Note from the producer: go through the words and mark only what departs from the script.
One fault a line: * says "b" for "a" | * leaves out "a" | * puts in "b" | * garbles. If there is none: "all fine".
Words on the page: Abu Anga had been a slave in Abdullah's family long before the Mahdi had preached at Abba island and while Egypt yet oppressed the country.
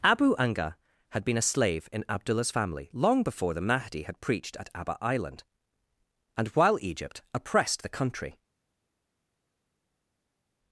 * leaves out "yet"